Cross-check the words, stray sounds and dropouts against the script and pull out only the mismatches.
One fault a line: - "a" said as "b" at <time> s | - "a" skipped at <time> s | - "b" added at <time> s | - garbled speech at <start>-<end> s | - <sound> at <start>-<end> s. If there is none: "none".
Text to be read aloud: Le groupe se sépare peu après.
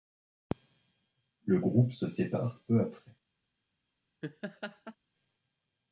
- laugh at 4.2-5.0 s